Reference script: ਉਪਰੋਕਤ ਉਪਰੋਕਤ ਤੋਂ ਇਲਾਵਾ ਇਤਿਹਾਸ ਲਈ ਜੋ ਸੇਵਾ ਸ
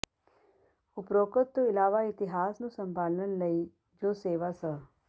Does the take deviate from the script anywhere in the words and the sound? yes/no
yes